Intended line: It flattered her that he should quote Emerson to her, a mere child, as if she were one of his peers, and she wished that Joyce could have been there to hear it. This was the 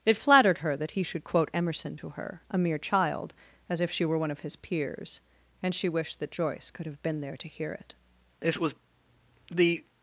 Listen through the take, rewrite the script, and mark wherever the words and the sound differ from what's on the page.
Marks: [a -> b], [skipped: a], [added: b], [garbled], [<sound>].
It flattered her that he should quote Emerson to her, a mere child, as if she were one of his peers, and she wished that Joyce could have been there to hear it. This was the